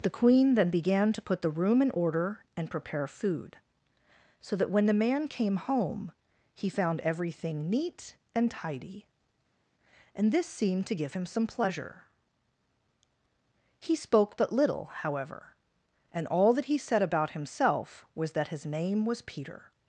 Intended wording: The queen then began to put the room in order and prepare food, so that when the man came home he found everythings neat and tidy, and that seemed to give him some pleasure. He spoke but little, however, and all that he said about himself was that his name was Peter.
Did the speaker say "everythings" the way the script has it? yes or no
no